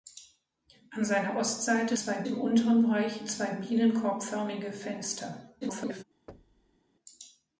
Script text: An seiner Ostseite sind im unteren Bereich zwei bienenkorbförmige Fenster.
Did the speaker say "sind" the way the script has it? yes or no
no